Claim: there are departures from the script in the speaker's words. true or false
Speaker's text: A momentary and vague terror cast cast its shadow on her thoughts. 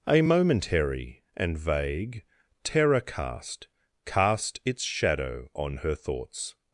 false